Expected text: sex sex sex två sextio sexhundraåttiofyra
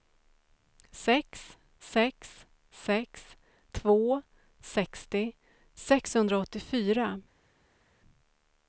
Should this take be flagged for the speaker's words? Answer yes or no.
no